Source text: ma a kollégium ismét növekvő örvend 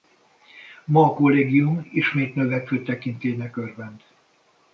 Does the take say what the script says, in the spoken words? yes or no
no